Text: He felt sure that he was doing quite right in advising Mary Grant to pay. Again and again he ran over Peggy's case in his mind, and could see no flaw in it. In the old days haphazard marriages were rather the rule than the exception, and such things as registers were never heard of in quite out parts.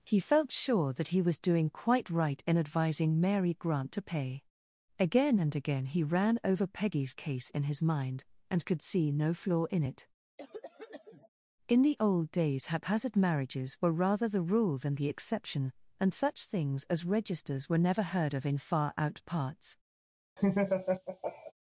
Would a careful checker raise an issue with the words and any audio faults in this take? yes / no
yes